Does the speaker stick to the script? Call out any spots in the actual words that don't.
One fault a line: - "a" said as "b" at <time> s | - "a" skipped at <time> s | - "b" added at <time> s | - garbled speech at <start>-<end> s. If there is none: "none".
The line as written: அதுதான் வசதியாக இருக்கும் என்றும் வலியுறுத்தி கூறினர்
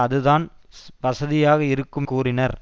- "என்றும் வலியுறுத்தி" skipped at 2.1 s